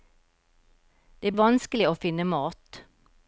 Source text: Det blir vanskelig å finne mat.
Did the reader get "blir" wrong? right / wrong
wrong